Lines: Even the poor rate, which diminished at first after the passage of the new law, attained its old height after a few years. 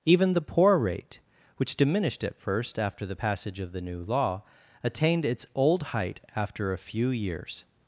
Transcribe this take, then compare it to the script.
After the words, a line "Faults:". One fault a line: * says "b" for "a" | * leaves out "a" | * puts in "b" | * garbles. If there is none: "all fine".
Even the poor rate, which diminished at first after the passage of the new law, attained its old height after a few years.
Faults:
all fine